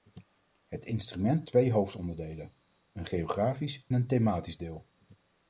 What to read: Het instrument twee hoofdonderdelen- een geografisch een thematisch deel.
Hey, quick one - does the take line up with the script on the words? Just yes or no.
yes